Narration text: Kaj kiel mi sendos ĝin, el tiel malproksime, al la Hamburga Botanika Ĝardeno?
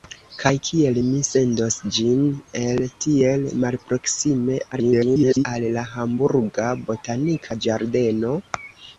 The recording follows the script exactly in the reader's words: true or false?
false